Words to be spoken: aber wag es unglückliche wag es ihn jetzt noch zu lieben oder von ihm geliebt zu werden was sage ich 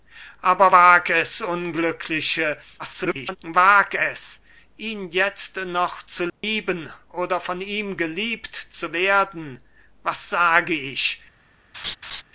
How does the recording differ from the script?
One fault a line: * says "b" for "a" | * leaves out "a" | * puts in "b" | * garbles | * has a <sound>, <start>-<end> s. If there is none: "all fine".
* garbles
* has a dropout, 6.3-6.4 s
* has a laugh, 11.7-12.2 s